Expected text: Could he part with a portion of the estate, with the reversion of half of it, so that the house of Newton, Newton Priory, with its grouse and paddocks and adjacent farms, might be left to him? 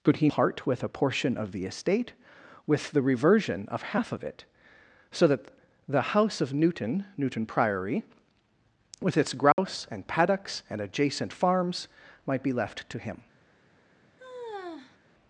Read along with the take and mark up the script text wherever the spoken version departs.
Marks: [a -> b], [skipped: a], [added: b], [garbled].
Could he part with a portion of the estate, with the reversion of half of it, so that the house of Newton, Newton Priory, with its grouse and paddocks and adjacent farms, might be left to him?